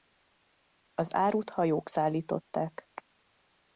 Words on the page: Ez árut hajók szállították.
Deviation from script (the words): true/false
true